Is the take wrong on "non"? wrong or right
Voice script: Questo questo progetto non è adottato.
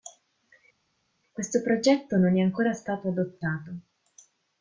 right